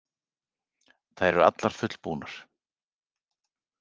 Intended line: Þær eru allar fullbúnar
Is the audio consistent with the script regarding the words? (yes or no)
yes